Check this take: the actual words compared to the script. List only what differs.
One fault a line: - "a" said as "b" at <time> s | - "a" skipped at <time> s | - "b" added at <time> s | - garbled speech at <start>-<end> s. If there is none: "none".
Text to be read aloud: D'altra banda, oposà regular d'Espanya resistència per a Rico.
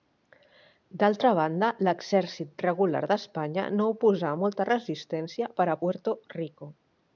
- "oposà" said as "l'exèrcit" at 1.9 s
- "no oposà molta" added at 3.8 s
- "Puerto" added at 5.8 s